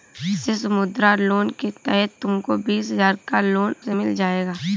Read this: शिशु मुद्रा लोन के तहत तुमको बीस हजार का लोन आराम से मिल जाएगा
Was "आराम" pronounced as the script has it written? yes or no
no